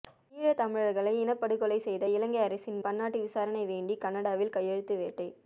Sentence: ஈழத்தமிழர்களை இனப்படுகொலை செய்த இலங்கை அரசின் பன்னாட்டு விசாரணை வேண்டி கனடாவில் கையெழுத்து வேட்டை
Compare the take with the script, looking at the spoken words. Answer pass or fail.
pass